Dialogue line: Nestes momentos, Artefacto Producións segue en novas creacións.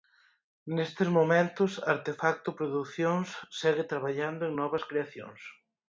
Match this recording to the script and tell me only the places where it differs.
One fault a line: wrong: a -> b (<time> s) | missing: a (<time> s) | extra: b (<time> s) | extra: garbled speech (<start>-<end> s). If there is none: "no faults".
extra: traballando (3.9 s)